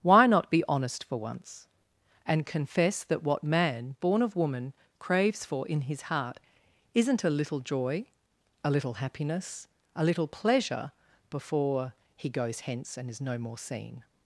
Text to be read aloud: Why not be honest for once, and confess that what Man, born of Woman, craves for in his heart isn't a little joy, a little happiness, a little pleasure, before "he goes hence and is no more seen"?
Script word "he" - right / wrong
right